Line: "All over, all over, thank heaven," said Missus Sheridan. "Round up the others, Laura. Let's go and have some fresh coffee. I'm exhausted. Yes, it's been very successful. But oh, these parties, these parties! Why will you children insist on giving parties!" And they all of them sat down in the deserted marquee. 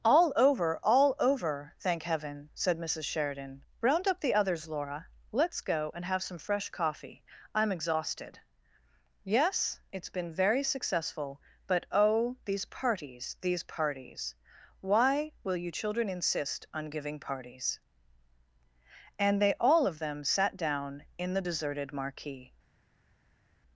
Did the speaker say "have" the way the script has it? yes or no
yes